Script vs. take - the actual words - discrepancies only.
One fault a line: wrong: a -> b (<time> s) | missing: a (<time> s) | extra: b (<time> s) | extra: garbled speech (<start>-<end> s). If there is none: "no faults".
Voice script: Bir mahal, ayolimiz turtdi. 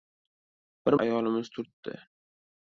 missing: mahal (0.9 s)